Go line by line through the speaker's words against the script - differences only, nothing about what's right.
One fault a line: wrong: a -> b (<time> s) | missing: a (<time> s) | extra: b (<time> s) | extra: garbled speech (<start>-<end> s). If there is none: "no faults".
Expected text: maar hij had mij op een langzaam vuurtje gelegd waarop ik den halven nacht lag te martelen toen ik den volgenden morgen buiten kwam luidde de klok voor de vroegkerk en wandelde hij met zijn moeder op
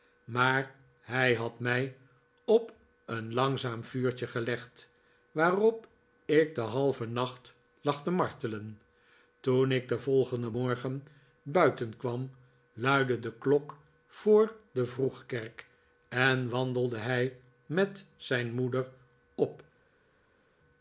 no faults